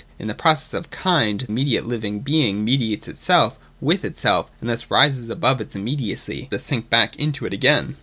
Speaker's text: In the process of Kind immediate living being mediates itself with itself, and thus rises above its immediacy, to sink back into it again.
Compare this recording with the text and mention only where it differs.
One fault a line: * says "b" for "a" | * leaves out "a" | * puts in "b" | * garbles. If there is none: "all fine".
all fine